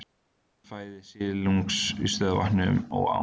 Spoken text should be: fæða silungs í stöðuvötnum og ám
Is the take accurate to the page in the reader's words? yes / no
yes